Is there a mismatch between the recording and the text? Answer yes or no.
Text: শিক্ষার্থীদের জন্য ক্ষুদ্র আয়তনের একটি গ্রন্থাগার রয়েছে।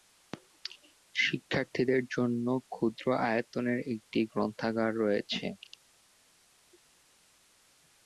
no